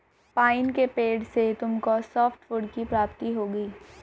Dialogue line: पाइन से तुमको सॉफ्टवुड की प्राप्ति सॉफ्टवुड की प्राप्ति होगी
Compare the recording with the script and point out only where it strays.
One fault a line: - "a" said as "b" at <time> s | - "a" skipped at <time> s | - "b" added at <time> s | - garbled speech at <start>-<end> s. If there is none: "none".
- "के पेड़" added at 0.7 s
- "सॉफ्टवुड की प्राप्ति" skipped at 3.3 s